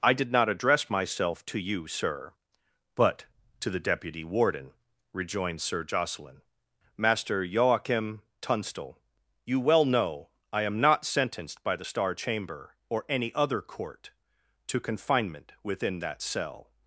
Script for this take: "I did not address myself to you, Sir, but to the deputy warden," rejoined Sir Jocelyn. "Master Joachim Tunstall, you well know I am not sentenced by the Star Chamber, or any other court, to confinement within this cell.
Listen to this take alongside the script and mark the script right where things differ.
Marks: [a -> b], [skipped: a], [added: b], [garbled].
"I did not address myself to you, Sir, but to the deputy warden," rejoined Sir Jocelyn. "Master Joachim Tunstall, you well know I am not sentenced by the Star Chamber, or any other court, to confinement within [this -> that] cell.